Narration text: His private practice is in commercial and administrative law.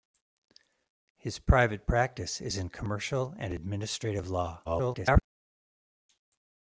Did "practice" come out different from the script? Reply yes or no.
no